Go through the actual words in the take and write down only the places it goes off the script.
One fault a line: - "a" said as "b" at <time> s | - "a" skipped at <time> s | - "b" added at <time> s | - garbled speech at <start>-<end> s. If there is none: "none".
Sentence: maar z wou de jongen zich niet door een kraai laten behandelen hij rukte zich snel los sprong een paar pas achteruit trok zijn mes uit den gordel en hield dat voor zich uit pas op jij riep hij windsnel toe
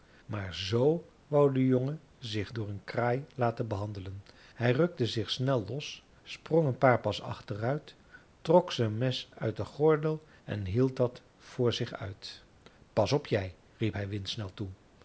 - "niet" skipped at 2.5 s